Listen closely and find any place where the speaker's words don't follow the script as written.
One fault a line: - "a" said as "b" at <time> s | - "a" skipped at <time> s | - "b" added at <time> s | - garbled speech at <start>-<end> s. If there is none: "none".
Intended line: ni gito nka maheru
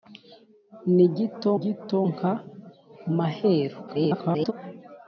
- "gito" added at 1.6 s
- garbled speech at 3.9-4.5 s